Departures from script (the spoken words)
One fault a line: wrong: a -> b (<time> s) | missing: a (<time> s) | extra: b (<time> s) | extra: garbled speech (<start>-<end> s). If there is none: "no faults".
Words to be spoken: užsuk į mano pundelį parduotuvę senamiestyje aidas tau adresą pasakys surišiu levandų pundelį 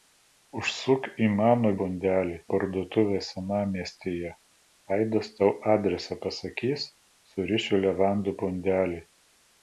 no faults